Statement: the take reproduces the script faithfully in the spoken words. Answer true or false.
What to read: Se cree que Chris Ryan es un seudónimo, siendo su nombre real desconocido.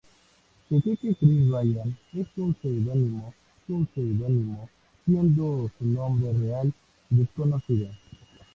false